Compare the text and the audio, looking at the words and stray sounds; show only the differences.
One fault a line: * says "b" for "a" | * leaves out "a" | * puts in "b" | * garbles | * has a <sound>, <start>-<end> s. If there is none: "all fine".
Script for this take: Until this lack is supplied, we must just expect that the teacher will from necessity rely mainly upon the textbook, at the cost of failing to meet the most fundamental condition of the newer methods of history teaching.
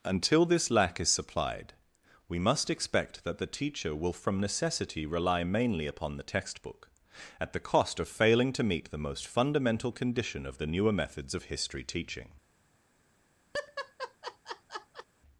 * leaves out "just"
* has a laugh, 13.5-15.1 s